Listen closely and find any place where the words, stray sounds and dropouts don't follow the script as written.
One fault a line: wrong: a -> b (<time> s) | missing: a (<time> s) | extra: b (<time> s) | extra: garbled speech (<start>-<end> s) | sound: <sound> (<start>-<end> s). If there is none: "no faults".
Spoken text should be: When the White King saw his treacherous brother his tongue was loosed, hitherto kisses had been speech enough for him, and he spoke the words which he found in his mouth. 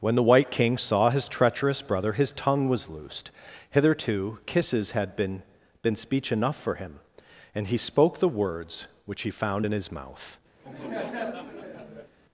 extra: been (5.8 s)
sound: laugh (10.6-12.1 s)